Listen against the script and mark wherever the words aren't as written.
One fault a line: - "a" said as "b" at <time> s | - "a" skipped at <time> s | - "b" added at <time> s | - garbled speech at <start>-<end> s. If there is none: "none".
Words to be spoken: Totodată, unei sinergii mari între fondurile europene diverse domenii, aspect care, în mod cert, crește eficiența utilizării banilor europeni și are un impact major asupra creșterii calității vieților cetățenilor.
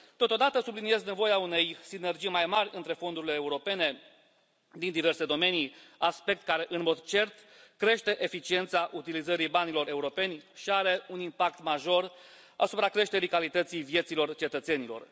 - "subliniez nevoia" added at 0.6 s
- "mai" added at 2.3 s
- "din" added at 4.7 s